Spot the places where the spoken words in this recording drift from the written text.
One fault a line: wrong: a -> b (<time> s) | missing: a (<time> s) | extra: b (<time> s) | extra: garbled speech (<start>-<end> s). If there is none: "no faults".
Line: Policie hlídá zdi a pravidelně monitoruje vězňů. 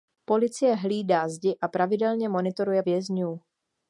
no faults